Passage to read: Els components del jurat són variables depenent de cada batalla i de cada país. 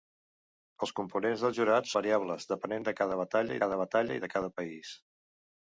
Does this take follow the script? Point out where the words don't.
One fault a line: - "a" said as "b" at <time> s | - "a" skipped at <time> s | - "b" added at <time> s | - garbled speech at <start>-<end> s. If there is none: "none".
- "són" skipped at 1.9 s
- "cada batalla" added at 3.7 s